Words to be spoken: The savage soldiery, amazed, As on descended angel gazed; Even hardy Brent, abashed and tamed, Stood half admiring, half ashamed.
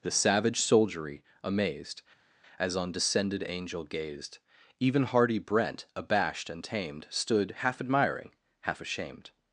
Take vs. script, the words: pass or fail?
pass